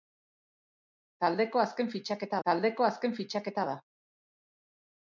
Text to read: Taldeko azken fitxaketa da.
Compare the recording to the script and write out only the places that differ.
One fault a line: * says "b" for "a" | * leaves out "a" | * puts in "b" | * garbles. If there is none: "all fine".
* puts in "taldeko azken fitxaketa"